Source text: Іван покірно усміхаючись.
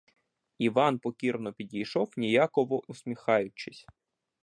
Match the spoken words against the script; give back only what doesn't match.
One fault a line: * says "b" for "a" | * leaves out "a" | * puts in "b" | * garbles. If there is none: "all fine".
* puts in "підійшов ніяково"